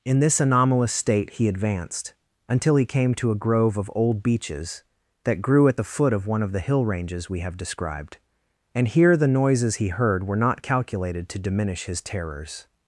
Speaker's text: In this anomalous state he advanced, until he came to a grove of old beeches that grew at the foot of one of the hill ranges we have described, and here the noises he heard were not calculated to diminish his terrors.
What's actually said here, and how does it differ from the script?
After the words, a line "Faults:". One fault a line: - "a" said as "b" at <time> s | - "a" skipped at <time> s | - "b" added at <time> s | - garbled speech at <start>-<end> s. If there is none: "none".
In this anomalous state he advanced, until he came to a grove of old beeches that grew at the foot of one of the hill ranges we have described, and here the noises he heard were not calculated to diminish his terrors.
Faults:
none